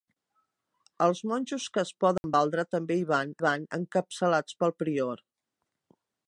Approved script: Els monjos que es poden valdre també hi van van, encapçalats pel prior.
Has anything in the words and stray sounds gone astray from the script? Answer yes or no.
yes